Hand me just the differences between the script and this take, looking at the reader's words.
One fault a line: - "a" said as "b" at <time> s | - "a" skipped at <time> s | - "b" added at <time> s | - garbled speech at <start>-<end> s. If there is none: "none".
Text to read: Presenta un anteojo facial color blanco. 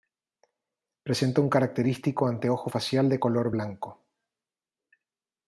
- "característico" added at 1.5 s
- "de" added at 3.1 s